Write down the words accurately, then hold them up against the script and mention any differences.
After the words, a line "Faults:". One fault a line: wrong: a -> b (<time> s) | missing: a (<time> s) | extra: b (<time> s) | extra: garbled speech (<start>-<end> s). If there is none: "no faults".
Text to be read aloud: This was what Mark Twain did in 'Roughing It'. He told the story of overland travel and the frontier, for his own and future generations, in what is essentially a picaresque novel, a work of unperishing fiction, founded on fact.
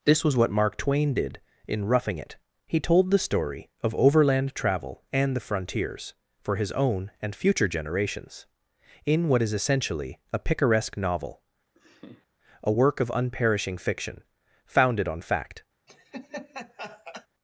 This was what Mark Twain did in 'Roughing It'. He told the story of overland travel and the frontiers, for his own and future generations, in what is essentially a picaresque novel, a work of unperishing fiction, founded on fact.
Faults:
wrong: frontier -> frontiers (5.4 s)